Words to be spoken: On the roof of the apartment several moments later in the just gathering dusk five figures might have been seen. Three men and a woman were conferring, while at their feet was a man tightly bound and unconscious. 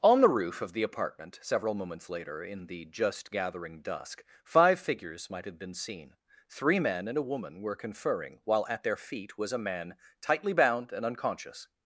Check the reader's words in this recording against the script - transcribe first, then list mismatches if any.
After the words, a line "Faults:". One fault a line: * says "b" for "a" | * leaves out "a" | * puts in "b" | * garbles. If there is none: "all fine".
On the roof of the apartment several moments later in the just gathering dusk five figures might have been seen. Three men and a woman were conferring, while at their feet was a man tightly bound and unconscious.
Faults:
all fine